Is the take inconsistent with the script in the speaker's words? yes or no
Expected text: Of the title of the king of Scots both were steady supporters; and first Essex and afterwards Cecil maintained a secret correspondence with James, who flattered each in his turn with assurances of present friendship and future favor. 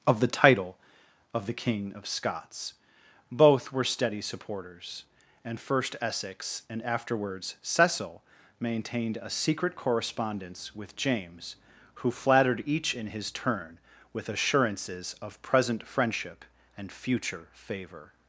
no